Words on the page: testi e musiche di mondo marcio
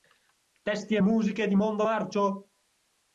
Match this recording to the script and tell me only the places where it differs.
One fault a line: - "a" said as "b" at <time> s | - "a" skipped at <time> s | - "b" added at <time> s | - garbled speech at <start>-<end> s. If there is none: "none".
none